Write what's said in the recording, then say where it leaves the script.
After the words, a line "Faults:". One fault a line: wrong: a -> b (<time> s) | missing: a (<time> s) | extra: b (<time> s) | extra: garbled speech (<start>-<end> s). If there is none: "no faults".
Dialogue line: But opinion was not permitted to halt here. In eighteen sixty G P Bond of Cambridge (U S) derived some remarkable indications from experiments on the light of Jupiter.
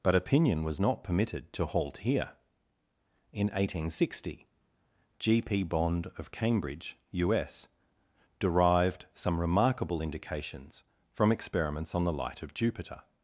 But opinion was not permitted to halt here. In eighteen sixty G P Bond of Cambridge (U S) derived some remarkable indications from experiments on the light of Jupiter.
Faults:
no faults